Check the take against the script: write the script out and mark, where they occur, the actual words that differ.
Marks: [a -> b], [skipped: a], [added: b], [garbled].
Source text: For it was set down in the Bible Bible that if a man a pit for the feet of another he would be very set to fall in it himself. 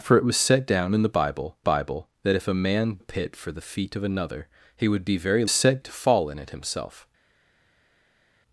For it was set down in the Bible Bible that if a man a pit for the feet of another he would be very set to fall in it himself.